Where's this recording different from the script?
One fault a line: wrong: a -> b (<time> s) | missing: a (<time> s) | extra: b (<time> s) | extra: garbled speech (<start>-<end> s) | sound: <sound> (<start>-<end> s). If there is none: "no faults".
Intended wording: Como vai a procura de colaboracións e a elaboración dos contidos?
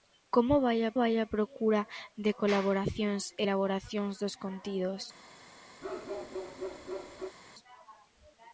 extra: vai a (1.0 s)
missing: a (3.4 s)
sound: bark (5.8-7.4 s)